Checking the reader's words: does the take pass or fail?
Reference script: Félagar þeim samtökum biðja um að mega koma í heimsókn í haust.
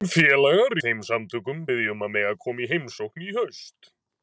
pass